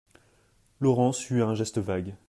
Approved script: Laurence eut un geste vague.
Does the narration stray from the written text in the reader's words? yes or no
no